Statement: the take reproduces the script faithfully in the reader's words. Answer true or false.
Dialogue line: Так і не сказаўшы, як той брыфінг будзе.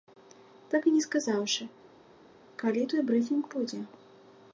false